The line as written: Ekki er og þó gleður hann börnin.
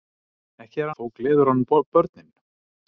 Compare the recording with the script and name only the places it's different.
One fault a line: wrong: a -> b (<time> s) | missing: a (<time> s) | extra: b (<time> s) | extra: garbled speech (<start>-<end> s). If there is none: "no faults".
no faults